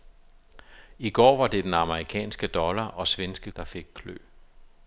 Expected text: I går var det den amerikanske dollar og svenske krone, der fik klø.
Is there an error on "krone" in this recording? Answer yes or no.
yes